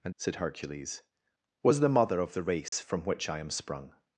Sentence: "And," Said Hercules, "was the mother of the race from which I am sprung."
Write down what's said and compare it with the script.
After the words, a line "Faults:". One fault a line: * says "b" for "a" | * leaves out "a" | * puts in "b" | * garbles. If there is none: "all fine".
"And," Said Hercules, "was the mother of the race from which I am sprung."
Faults:
all fine